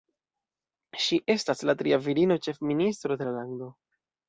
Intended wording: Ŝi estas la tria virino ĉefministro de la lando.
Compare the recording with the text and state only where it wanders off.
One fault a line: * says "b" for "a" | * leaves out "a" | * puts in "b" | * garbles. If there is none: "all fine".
all fine